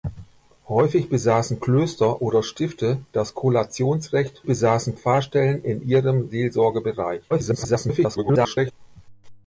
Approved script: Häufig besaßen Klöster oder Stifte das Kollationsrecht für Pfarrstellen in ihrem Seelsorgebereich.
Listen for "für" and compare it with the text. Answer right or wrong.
wrong